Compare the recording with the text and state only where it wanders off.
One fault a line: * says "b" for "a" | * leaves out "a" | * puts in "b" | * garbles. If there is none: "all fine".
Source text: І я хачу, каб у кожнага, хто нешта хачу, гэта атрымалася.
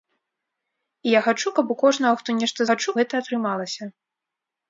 all fine